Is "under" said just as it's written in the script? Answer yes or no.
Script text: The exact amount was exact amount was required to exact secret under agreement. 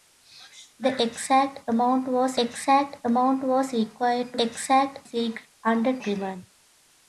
yes